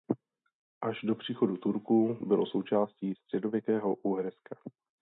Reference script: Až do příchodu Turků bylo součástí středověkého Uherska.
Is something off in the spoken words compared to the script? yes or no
no